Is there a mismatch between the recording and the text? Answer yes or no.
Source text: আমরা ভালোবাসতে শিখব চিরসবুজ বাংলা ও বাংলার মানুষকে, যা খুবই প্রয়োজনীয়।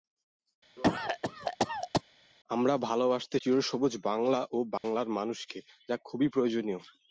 yes